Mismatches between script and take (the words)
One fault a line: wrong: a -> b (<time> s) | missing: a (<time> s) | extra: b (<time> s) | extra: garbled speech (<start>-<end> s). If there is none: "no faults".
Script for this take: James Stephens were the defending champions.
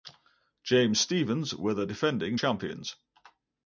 no faults